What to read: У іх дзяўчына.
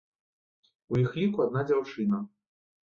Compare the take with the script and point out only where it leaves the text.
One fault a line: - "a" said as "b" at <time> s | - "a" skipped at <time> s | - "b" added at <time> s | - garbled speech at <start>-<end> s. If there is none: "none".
- "ліку адна" added at 1.2 s